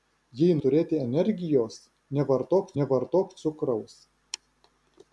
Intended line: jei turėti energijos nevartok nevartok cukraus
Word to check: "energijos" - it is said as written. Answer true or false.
true